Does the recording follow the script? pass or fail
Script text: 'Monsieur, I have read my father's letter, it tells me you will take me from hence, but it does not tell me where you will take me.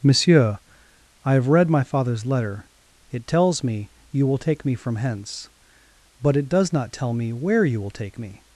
pass